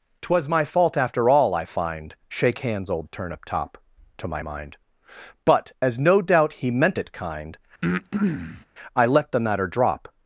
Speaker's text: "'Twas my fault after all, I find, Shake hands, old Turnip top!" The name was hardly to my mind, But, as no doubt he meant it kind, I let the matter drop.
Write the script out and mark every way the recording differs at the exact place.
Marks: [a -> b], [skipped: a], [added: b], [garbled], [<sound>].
"'Twas my fault after all, I find, Shake hands, old Turnip top!" [skipped: The name was hardly] to my mind, But, as no doubt he meant it kind, [breath] I let the matter drop.